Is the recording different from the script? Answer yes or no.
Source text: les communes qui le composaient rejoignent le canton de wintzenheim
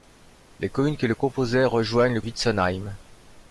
yes